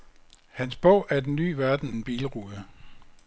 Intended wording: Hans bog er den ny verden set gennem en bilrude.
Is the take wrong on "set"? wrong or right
wrong